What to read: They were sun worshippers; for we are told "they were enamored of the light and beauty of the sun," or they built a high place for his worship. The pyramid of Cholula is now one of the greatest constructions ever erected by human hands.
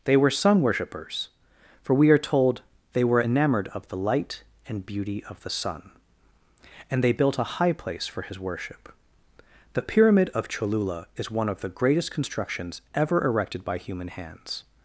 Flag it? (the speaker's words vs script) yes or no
yes